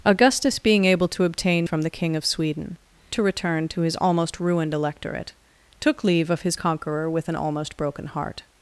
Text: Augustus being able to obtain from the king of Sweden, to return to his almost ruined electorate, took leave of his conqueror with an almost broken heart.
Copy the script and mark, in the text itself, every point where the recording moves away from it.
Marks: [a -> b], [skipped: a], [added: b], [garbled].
Augustus being able to obtain from the king of Sweden, to return to his almost ruined electorate, took leave of his conqueror with an almost broken heart.